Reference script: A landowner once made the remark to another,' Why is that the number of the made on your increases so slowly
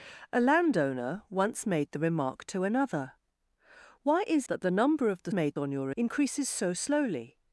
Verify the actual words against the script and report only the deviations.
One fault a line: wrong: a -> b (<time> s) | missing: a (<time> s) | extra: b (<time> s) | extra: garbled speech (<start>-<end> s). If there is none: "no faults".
no faults